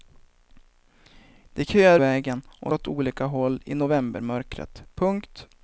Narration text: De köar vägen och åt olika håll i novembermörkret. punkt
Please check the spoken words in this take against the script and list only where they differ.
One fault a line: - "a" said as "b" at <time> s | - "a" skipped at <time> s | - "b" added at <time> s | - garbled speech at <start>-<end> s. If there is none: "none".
none